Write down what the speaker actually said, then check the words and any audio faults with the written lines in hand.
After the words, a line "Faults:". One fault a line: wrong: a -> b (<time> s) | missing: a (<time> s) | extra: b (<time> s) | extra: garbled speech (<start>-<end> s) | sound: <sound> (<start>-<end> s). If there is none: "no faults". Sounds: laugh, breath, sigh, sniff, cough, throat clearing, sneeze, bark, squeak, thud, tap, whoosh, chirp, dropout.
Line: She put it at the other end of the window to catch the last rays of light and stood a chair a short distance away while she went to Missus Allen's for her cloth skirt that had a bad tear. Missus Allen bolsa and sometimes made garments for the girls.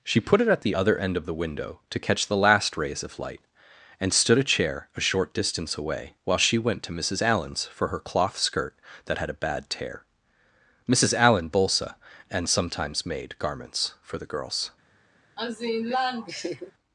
She put it at the other end of the window to catch the last rays of light and stood a chair a short distance away while she went to Missus Allen's for her cloth skirt that had a bad tear. Missus Allen bolsa and sometimes made garments for the girls.
Faults:
sound: laugh (15.4-16.7 s)